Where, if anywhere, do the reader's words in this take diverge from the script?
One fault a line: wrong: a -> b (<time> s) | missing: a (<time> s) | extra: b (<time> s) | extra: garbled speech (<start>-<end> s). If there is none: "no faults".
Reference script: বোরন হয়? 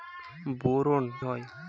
no faults